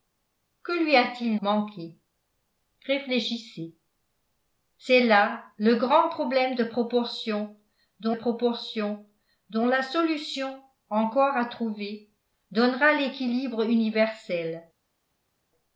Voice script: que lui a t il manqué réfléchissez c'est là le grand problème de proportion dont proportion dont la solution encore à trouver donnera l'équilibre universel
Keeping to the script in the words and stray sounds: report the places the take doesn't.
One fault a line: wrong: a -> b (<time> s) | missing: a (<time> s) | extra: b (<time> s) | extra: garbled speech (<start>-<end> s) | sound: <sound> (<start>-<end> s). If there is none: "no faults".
no faults